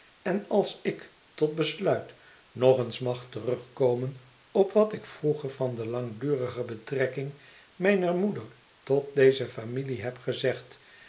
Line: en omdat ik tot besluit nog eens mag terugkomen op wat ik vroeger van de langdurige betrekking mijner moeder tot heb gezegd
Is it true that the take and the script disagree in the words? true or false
true